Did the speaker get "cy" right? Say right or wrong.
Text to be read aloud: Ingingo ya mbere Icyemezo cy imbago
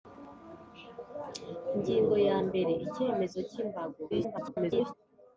right